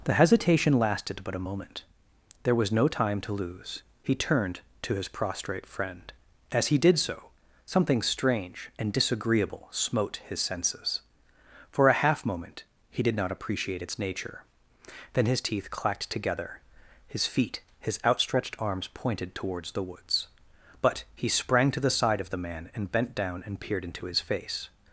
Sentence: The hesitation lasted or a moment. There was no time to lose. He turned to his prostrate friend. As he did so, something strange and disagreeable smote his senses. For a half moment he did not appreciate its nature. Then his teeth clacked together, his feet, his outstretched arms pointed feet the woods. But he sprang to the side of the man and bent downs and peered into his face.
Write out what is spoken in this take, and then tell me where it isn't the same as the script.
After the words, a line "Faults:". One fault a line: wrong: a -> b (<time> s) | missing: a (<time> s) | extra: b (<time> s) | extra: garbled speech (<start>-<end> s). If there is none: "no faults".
The hesitation lasted but a moment. There was no time to lose. He turned to his prostrate friend. As he did so, something strange and disagreeable smote his senses. For a half moment he did not appreciate its nature. Then his teeth clacked together, his feet, his outstretched arms pointed towards the woods. But he sprang to the side of the man and bent down and peered into his face.
Faults:
wrong: or -> but (1.2 s)
wrong: feet -> towards (19.3 s)
wrong: downs -> down (23.2 s)